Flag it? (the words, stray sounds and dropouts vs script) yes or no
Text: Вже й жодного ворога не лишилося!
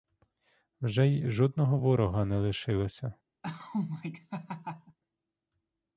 yes